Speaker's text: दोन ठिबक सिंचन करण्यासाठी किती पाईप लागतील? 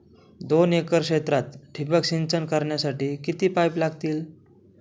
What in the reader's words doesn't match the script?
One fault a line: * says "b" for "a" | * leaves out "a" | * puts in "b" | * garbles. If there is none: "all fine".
* puts in "एकर क्षेत्रात"